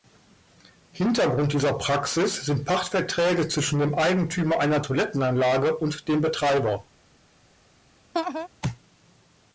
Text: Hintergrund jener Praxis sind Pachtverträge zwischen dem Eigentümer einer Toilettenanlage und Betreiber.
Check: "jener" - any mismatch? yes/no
yes